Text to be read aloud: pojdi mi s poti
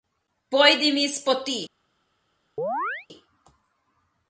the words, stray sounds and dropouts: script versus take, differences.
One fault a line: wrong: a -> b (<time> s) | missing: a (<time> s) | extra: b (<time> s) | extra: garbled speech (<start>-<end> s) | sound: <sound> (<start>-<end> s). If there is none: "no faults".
sound: chirp (2.6-3.1 s)